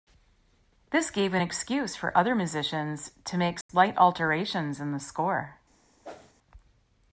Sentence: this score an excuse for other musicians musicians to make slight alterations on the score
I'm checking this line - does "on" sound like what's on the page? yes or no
no